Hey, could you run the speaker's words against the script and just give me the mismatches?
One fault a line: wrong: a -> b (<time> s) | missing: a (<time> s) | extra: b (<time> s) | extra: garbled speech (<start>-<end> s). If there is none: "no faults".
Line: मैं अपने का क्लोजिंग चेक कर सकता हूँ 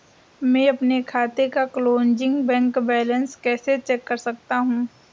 extra: खाते (1.0 s)
extra: बैंक बैलेंस कैसे (2.5 s)